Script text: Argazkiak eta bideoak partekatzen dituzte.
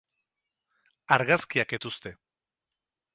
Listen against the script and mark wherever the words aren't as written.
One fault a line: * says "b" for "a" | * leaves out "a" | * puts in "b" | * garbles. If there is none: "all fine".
* leaves out "eta bideoak partekatzen"